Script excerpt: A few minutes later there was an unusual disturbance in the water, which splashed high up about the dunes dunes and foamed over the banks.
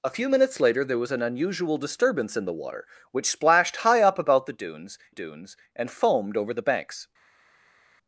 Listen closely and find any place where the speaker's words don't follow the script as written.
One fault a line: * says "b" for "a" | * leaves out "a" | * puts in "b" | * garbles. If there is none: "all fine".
all fine